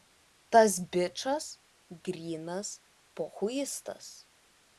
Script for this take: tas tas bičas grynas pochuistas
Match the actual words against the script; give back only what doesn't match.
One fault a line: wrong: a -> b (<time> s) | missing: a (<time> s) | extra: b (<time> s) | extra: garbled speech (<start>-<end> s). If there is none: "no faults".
missing: tas (0.8 s)